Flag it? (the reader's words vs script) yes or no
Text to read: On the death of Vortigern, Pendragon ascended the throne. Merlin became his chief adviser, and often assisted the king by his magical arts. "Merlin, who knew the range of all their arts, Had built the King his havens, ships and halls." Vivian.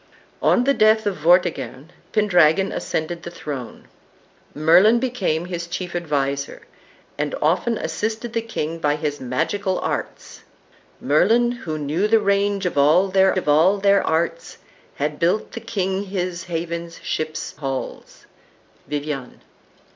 yes